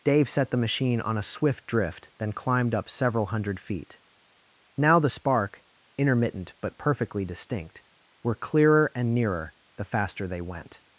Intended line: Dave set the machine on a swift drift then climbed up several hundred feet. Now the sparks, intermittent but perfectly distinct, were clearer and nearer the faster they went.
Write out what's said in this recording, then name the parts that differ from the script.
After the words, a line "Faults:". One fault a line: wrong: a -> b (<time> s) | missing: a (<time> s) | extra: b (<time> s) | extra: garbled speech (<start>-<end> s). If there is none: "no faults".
Dave set the machine on a swift drift then climbed up several hundred feet. Now the spark, intermittent but perfectly distinct, were clearer and nearer the faster they went.
Faults:
wrong: sparks -> spark (5.1 s)